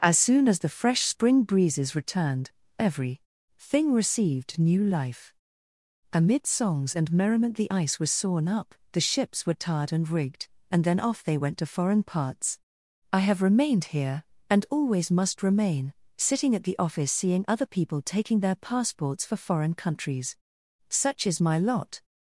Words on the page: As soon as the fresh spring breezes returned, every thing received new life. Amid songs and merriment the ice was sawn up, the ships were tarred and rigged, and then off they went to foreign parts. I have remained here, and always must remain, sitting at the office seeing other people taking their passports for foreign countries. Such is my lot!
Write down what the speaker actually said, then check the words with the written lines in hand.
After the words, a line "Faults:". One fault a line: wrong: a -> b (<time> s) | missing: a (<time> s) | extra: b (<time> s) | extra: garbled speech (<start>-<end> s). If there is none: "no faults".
As soon as the fresh spring breezes returned, every thing received new life. Amid songs and merriment the ice was sawn up, the ships were tarred and rigged, and then off they went to foreign parts. I have remained here, and always must remain, sitting at the office seeing other people taking their passports for foreign countries. Such is my lot!
Faults:
no faults